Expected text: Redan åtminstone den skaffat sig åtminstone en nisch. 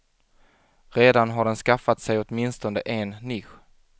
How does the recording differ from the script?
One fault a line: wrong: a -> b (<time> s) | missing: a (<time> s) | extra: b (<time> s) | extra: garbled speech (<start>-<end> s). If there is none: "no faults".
wrong: åtminstone -> har (1.3 s)